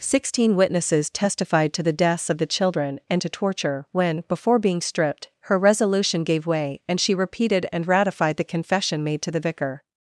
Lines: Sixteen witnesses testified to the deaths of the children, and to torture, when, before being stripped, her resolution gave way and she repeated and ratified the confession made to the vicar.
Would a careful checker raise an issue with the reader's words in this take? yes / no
no